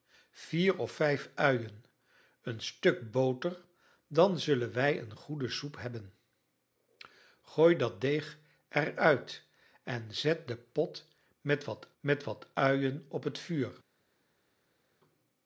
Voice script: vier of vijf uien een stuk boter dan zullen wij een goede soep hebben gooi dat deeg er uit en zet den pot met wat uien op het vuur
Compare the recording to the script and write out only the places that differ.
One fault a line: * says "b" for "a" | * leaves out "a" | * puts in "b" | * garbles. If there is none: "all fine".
* puts in "met wat"